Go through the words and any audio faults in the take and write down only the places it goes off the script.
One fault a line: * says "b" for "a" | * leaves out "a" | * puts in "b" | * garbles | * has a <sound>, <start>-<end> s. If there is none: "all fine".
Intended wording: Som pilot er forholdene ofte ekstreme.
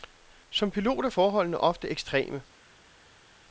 all fine